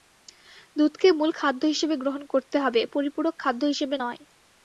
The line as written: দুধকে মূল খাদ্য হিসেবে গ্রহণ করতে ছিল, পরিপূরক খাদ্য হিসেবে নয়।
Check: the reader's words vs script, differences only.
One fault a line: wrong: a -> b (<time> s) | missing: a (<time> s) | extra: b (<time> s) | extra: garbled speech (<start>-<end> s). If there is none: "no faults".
wrong: ছিল -> হবে (2.6 s)